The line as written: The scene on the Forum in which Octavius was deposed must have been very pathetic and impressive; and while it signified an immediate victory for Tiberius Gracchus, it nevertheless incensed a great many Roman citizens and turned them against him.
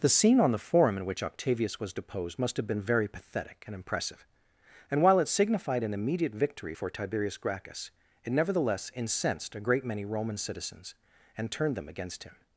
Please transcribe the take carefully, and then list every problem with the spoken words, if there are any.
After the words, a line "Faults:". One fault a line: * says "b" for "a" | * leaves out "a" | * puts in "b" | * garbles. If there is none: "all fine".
The scene on the Forum in which Octavius was deposed must have been very pathetic and impressive; and while it signified an immediate victory for Tiberius Gracchus, it nevertheless incensed a great many Roman citizens and turned them against him.
Faults:
all fine